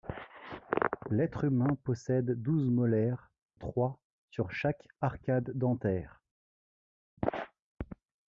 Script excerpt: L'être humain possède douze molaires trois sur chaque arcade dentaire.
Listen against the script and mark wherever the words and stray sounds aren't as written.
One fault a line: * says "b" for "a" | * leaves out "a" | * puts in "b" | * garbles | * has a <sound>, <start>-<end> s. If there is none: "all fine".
all fine